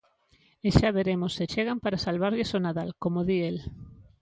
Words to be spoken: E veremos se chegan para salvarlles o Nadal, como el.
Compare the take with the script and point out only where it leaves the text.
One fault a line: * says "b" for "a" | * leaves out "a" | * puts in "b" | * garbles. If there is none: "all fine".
* puts in "xa"
* puts in "di"